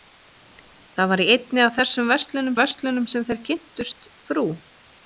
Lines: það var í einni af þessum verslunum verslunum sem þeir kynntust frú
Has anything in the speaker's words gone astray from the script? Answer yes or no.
no